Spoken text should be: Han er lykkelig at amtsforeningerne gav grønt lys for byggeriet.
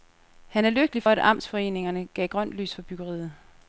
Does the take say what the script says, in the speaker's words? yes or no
yes